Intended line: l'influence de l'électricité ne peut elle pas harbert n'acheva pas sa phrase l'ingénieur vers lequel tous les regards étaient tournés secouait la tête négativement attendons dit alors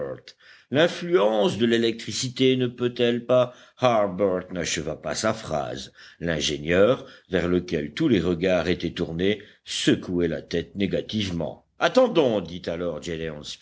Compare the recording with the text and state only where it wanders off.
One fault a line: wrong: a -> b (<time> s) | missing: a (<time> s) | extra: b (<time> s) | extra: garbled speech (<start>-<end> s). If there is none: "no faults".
no faults